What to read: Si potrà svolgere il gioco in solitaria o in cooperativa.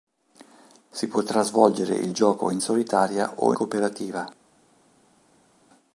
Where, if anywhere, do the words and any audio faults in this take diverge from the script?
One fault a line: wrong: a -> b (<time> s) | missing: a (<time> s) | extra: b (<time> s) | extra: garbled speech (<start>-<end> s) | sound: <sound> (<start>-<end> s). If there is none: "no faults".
missing: in (3.5 s)